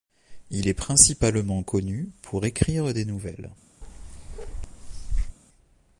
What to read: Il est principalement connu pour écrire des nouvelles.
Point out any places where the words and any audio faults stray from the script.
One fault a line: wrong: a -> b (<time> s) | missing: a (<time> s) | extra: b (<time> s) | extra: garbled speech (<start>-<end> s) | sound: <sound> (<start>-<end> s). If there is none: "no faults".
sound: bark (3.8-5.4 s)